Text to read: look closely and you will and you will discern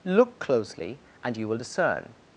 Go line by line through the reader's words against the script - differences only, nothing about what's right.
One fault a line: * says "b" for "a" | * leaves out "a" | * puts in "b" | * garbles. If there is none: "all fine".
* leaves out "and you will"